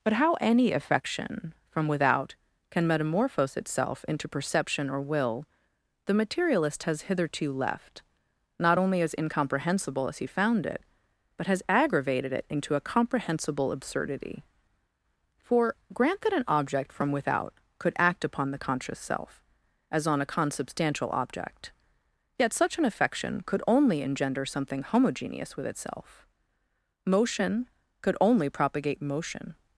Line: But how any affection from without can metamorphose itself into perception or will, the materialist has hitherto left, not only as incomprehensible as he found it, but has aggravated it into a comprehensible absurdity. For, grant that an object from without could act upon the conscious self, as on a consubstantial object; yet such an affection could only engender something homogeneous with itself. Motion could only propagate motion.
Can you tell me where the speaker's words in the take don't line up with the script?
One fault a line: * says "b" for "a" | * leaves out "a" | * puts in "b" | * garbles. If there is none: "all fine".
all fine